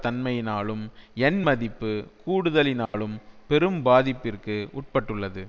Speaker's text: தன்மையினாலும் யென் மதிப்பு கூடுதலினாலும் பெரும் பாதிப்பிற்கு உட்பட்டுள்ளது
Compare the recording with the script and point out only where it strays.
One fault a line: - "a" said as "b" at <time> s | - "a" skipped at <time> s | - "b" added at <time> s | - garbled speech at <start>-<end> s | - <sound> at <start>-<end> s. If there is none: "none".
- dropout at 2.9-2.9 s